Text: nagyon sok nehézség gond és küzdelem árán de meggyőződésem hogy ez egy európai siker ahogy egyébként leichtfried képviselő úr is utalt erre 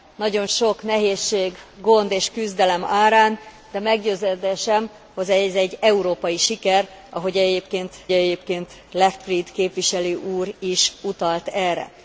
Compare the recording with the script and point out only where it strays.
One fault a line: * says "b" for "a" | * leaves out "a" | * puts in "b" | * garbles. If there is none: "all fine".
* puts in "egyébként"